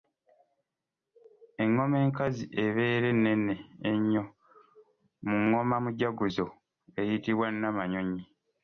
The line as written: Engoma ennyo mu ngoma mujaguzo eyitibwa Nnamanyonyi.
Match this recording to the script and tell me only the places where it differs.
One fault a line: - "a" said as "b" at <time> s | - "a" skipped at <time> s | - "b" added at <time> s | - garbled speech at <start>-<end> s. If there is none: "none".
- "enkazi ebeera ennene" added at 2.0 s